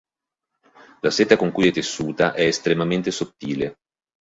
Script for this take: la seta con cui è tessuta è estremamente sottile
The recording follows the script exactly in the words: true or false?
true